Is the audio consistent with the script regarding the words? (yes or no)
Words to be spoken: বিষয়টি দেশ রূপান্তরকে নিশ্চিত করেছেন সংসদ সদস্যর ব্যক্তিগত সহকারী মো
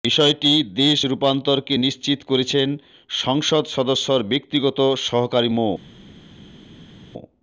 yes